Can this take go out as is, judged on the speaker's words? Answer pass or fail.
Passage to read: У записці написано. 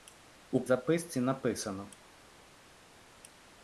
pass